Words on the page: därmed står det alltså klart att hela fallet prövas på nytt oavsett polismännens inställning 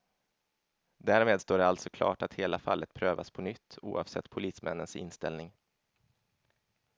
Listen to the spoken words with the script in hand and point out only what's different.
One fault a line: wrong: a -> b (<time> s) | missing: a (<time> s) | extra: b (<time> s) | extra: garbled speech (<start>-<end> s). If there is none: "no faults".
no faults